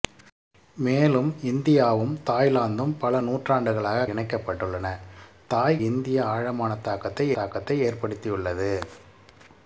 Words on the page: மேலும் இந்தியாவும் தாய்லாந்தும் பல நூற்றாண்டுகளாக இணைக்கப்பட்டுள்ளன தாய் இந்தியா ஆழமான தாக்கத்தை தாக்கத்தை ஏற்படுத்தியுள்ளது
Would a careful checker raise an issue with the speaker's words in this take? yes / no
no